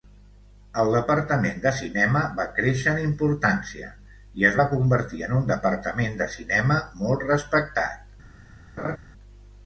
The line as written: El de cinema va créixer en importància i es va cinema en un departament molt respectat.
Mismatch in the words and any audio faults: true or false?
true